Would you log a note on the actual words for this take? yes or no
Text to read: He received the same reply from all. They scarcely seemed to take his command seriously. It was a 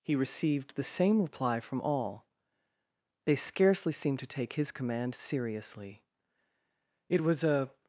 no